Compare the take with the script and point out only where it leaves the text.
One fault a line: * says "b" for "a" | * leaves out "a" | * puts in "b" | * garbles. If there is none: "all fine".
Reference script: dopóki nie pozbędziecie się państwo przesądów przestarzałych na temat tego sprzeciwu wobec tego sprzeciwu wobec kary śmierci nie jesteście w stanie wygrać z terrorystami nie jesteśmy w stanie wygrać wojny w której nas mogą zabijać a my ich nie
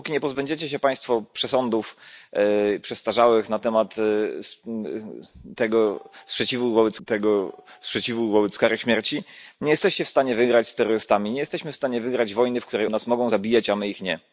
all fine